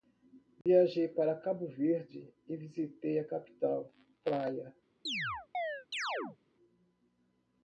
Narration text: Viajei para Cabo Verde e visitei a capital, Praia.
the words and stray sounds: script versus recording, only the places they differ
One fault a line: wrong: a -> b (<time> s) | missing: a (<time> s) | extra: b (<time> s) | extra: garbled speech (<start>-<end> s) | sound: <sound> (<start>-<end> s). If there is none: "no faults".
sound: dropout (0.6-0.7 s)
sound: chirp (5.1-6.4 s)